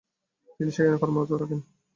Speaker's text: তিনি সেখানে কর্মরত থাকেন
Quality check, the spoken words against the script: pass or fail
pass